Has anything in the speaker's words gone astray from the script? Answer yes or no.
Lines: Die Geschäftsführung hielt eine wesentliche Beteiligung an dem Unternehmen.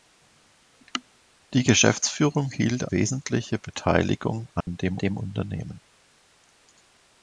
yes